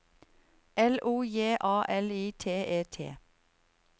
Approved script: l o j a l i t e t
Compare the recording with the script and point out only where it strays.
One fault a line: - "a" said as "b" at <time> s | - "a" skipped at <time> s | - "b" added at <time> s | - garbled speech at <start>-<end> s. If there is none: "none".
none